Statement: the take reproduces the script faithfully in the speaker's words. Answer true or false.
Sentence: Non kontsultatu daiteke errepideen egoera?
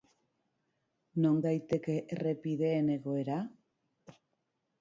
false